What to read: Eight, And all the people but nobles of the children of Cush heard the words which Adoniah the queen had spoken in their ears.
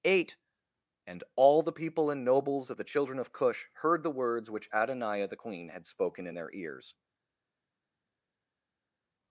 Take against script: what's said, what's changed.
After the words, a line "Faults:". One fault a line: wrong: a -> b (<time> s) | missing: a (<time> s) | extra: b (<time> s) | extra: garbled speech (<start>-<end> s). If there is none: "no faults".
Eight, And all the people and nobles of the children of Cush heard the words which Adoniah the queen had spoken in their ears.
Faults:
wrong: but -> and (2.1 s)